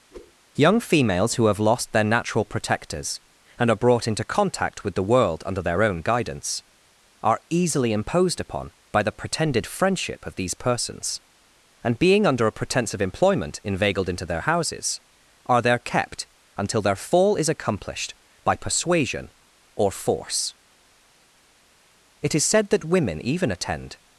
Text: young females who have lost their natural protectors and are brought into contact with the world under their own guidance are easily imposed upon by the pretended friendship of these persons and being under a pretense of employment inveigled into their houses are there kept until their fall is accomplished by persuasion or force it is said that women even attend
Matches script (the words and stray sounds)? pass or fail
fail